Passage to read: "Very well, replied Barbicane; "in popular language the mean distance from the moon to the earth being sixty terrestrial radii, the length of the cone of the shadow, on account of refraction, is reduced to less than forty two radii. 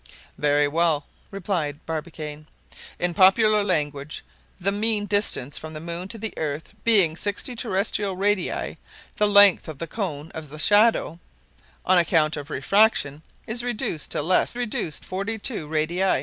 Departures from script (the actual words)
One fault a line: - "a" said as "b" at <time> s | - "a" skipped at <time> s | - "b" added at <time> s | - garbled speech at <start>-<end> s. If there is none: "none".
- "than" said as "reduced" at 14.5 s